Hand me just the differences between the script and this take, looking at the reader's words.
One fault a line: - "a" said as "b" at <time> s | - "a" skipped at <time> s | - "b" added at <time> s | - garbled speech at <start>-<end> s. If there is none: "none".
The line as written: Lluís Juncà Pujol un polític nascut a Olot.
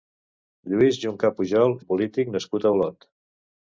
none